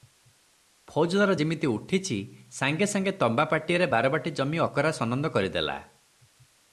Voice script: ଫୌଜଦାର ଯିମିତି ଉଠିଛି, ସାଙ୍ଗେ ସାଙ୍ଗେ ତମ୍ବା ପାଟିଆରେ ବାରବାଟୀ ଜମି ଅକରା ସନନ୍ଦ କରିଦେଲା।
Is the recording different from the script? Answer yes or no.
no